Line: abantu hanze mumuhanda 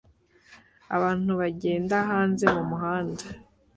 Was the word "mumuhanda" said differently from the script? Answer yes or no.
no